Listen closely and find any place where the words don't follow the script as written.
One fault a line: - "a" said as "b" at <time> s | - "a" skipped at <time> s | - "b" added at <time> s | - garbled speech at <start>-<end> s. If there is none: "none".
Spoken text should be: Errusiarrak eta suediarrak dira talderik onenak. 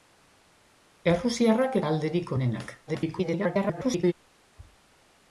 - "eta suediarrak dira" skipped at 1.8 s
- garbled speech at 2.9-4.1 s